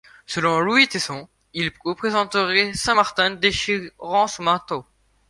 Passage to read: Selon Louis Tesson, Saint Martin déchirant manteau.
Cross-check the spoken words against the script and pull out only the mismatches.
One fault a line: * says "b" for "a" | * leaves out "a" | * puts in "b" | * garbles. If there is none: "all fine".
* puts in "il représenterait"
* puts in "son"